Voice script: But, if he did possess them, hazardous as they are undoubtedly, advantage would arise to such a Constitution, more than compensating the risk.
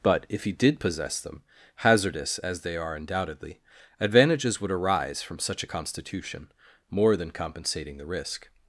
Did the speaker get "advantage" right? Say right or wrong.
wrong